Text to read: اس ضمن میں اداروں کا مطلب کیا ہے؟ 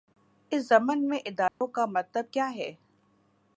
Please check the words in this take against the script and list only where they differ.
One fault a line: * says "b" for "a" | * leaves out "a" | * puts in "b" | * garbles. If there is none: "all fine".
all fine